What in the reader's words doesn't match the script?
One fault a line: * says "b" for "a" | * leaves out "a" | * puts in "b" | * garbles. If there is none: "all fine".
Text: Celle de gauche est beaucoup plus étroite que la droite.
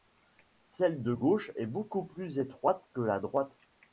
all fine